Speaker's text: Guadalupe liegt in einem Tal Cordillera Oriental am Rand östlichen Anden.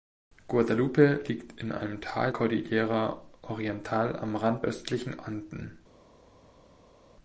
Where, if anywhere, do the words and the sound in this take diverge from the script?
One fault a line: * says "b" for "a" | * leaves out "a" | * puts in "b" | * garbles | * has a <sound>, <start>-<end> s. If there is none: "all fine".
all fine